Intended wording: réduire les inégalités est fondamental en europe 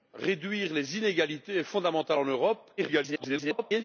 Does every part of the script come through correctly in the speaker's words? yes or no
no